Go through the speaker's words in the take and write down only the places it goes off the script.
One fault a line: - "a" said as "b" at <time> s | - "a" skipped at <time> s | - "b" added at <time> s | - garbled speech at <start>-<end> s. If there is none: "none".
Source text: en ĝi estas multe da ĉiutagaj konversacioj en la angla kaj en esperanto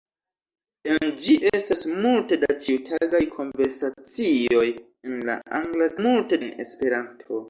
- "kaj" said as "multe" at 6.1 s